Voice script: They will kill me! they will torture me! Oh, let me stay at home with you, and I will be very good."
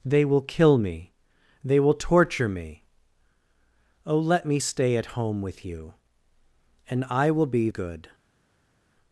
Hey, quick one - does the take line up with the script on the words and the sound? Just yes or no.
no